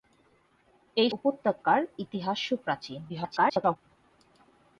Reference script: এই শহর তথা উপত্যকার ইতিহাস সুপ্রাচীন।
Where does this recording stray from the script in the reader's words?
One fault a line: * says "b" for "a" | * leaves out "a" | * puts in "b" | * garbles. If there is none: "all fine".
* leaves out "শহর তথা"
* garbles